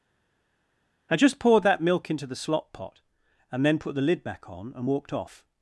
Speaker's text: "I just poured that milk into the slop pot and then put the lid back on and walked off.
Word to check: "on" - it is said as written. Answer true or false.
true